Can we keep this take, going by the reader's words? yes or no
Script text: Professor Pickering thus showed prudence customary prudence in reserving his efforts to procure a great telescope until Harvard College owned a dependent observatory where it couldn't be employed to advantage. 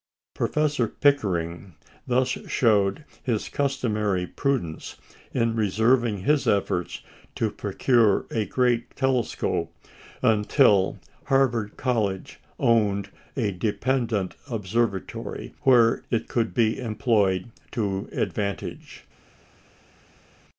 no